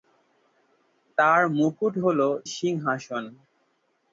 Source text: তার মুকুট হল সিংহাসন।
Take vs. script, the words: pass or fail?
pass